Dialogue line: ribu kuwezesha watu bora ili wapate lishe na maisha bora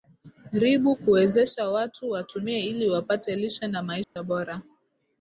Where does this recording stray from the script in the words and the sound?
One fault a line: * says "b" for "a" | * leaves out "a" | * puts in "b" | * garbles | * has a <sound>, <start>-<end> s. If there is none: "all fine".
* says "watumie" for "bora"
* has a dropout, 4.0-4.2 s